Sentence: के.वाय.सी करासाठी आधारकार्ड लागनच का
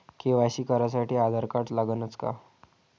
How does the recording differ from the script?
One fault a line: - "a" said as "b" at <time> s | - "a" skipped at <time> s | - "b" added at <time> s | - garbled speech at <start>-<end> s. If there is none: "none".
none